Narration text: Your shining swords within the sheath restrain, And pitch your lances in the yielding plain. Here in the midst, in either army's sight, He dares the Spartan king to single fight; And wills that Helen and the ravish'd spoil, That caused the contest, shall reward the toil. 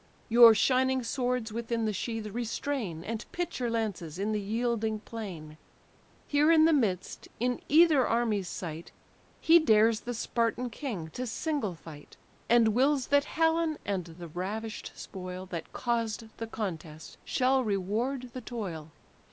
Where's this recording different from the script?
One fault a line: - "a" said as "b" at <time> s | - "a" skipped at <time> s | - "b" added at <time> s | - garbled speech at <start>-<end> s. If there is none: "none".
none